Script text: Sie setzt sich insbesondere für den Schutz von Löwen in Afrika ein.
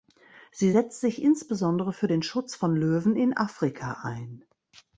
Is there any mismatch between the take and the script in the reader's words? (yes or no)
no